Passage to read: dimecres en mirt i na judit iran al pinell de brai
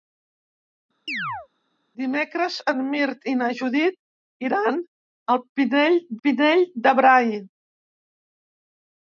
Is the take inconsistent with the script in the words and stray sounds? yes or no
yes